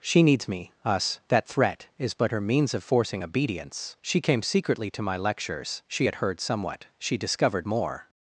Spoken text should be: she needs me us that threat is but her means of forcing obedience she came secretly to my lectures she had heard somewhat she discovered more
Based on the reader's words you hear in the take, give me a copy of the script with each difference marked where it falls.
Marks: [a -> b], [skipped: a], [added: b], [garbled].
she needs me us that threat is but her means of forcing obedience she came secretly to my lectures she had heard somewhat she discovered more